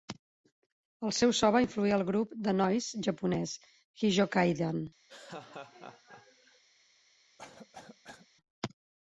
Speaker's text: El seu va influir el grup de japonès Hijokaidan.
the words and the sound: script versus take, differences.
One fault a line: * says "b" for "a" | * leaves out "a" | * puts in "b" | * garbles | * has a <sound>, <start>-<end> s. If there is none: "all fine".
* puts in "so"
* puts in "noise"
* has a laugh, 5.1-6.6 s
* has a cough, 7.4-8.3 s